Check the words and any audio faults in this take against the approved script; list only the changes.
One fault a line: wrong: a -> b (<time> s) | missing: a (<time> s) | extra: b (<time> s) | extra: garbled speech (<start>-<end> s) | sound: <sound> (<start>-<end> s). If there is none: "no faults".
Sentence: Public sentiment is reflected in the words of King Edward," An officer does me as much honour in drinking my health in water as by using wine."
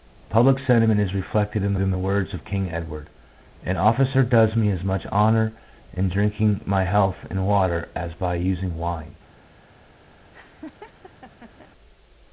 extra: in (1.8 s)
sound: laugh (10.3-11.7 s)